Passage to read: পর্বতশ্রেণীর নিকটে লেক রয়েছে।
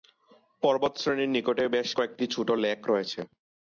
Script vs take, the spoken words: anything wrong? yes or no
yes